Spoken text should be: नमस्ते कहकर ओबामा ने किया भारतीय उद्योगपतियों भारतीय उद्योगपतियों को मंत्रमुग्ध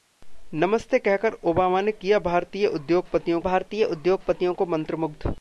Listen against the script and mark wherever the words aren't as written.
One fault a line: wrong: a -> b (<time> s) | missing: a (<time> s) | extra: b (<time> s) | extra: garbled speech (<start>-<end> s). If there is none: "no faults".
no faults